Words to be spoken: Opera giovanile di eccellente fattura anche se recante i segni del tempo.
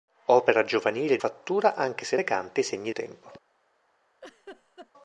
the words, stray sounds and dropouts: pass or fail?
fail